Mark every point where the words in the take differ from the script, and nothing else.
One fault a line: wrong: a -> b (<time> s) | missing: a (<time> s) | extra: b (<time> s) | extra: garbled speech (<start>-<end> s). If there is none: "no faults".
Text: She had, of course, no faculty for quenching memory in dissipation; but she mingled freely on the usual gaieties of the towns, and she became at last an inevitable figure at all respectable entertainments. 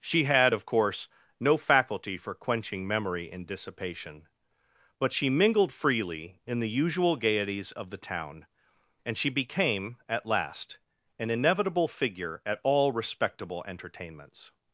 wrong: on -> in (6.5 s)
wrong: towns -> town (8.0 s)